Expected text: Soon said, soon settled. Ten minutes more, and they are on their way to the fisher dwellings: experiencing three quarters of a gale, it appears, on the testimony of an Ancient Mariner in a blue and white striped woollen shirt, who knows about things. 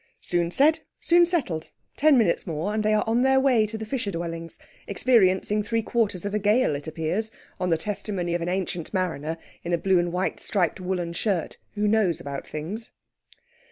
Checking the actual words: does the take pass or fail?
pass